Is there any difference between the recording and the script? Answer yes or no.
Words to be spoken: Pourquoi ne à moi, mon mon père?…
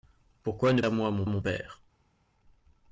no